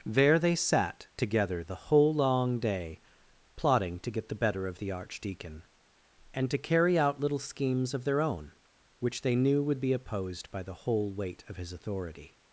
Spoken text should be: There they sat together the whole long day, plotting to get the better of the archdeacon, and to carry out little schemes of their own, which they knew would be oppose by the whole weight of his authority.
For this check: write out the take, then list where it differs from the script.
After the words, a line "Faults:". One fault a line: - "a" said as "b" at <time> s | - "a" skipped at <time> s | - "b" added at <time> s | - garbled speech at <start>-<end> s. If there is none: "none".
There they sat together the whole long day, plotting to get the better of the archdeacon, and to carry out little schemes of their own, which they knew would be opposed by the whole weight of his authority.
Faults:
- "oppose" said as "opposed" at 9.9 s